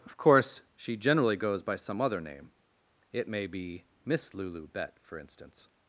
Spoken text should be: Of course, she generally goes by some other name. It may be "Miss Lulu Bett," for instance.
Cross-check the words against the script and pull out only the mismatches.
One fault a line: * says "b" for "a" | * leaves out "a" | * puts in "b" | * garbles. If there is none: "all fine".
all fine